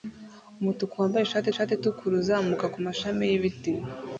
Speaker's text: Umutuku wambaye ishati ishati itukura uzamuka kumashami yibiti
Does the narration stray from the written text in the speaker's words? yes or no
no